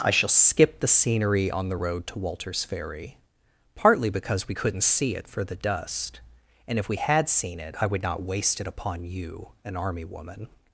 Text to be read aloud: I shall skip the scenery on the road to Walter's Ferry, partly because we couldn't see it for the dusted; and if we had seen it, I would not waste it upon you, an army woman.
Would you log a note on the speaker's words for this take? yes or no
yes